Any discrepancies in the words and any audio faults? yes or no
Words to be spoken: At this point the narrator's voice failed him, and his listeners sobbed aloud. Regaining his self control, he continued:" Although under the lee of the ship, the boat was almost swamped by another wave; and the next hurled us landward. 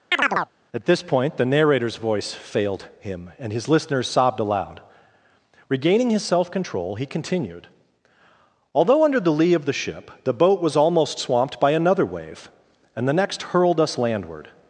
yes